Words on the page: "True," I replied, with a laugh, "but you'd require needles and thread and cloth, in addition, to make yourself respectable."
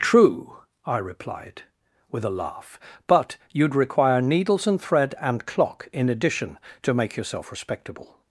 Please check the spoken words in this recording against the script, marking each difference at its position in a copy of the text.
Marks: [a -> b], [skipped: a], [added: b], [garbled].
"True," I replied, with a laugh, "but you'd require needles and thread and [cloth, -> clock] in addition, to make yourself respectable."